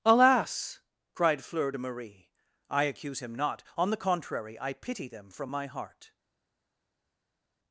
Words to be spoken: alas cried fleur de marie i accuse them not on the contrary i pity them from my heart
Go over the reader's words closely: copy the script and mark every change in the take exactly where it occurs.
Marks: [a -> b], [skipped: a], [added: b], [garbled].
alas cried fleur de marie i accuse [them -> him] not on the contrary i pity them from my heart